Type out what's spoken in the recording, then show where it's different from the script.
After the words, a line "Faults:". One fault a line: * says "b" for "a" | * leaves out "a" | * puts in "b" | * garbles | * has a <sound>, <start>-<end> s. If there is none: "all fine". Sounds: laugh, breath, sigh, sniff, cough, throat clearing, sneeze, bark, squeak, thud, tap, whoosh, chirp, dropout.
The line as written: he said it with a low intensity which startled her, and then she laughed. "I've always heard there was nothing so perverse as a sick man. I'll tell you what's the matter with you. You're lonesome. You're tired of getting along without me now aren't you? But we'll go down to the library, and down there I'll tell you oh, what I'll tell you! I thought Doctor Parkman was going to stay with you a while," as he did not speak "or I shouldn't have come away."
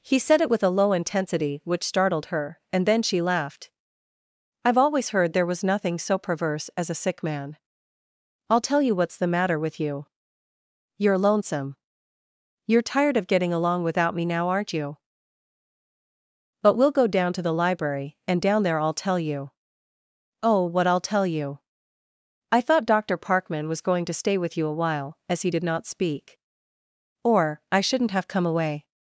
he said it with a low intensity which startled her, and then she laughed. "I've always heard there was nothing so perverse as a sick man. I'll tell you what's the matter with you. You're lonesome. You're tired of getting along without me now aren't you? But we'll go down to the library, and down there I'll tell you oh, what I'll tell you! I thought Doctor Parkman was going to stay with you a while," as he did not speak "or I shouldn't have come away."
Faults:
all fine